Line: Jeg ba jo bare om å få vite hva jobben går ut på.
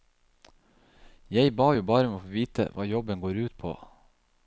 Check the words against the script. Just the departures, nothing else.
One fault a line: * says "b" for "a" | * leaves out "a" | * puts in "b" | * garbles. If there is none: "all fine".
all fine